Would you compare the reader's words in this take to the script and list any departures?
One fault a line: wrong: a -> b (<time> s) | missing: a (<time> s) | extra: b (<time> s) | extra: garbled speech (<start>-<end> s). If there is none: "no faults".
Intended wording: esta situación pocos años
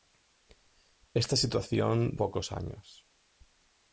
no faults